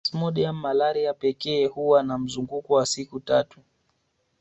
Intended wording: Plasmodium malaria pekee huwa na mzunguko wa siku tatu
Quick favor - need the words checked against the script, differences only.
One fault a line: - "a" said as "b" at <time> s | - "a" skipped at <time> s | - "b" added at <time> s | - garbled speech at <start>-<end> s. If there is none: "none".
none